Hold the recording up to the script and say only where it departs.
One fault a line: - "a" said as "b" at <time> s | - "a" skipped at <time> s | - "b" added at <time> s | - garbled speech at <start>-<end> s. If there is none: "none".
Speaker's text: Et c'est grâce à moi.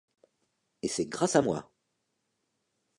none